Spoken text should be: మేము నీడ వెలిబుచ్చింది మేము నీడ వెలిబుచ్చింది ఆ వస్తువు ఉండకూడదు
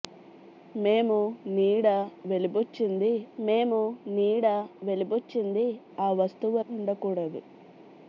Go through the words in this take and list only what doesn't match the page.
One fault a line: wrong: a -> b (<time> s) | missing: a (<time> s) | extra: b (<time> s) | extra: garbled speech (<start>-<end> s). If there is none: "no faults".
no faults